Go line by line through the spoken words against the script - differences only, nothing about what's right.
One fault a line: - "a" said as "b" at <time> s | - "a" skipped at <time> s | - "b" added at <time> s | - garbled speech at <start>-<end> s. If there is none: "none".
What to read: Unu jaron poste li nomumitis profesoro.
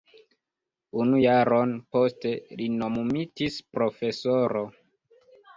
none